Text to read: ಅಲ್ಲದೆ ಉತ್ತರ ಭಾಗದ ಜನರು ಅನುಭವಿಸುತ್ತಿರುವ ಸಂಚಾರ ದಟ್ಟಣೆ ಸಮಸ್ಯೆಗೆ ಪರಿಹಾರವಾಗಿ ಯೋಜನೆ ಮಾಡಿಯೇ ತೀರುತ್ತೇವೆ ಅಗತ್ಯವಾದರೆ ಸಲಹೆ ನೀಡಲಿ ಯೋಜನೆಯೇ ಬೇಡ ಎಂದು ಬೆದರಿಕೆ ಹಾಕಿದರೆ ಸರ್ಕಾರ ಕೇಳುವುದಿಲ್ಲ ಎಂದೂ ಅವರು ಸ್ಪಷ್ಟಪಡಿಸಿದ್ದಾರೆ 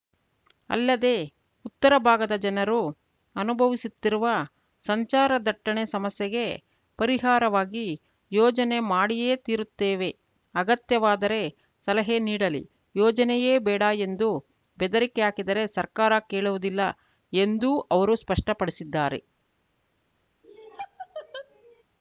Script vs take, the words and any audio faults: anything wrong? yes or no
yes